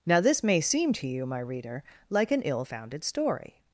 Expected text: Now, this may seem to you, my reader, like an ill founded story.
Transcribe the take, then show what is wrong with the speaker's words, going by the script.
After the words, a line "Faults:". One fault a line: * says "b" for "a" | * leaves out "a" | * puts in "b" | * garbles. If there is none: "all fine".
Now, this may seem to you, my reader, like an ill founded story.
Faults:
all fine